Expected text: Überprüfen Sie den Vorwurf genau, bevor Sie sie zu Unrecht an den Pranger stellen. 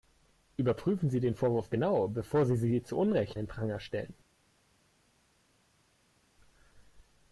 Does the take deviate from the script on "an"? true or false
true